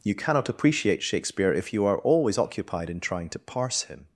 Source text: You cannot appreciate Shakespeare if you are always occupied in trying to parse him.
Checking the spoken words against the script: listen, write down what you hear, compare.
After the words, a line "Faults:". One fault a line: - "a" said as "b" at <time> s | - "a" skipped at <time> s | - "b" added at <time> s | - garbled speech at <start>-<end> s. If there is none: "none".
You cannot appreciate Shakespeare if you are always occupied in trying to parse him.
Faults:
none